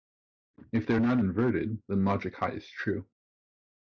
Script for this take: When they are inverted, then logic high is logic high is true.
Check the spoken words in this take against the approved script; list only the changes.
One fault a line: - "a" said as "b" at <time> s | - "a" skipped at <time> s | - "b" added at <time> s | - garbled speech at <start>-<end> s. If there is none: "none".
- "When" said as "If" at 0.7 s
- "not" added at 1.0 s
- "logic high is" skipped at 2.7 s